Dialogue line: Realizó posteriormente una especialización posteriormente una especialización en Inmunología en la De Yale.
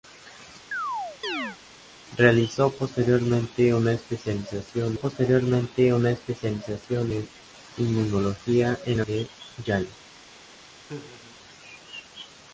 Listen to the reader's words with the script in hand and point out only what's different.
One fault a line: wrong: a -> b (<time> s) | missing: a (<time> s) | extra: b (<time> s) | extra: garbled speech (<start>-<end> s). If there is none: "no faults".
no faults